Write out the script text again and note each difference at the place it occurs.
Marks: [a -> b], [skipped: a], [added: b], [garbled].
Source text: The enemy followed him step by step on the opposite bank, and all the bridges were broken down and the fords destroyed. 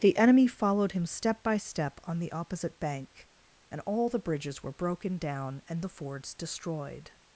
The enemy followed him step by step on the opposite bank, and all the bridges were broken down and the fords destroyed.